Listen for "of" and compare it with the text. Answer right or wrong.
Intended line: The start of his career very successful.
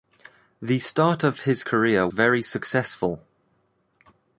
right